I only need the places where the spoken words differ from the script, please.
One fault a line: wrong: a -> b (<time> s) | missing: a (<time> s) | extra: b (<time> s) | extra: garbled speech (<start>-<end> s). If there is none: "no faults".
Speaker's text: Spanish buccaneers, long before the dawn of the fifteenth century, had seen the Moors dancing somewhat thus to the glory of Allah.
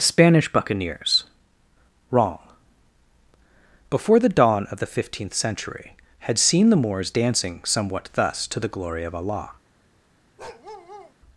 wrong: long -> wrong (2.1 s)